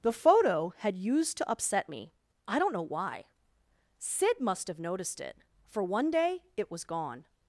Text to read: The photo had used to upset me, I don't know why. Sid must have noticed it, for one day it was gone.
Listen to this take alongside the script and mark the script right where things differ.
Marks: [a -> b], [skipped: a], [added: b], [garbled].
The photo had used to upset me, I don't know why. Sid must have noticed it, for one day it was gone.